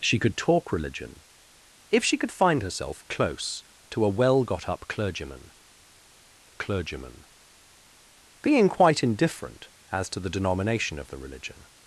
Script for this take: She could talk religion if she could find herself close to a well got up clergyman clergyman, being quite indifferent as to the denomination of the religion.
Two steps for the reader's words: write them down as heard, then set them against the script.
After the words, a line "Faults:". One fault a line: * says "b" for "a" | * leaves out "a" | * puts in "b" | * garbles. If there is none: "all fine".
She could talk religion if she could find herself close to a well got up clergyman clergyman, being quite indifferent as to the denomination of the religion.
Faults:
all fine